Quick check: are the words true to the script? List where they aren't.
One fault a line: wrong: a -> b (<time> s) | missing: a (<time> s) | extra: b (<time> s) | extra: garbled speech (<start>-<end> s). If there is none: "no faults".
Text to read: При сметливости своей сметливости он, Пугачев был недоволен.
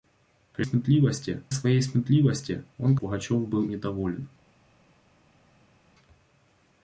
no faults